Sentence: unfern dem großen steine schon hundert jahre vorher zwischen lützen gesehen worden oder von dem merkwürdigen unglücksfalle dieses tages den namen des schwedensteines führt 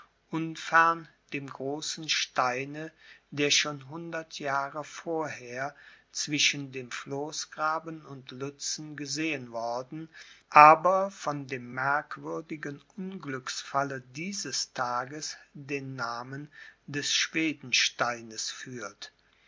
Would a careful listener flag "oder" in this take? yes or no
yes